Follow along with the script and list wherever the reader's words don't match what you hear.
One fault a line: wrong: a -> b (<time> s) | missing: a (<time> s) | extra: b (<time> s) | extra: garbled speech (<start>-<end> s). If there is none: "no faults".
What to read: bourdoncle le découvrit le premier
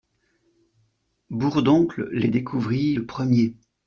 wrong: le -> les (2.1 s)